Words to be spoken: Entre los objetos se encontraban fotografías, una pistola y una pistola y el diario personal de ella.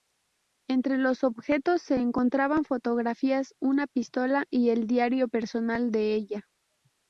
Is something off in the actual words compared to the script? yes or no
yes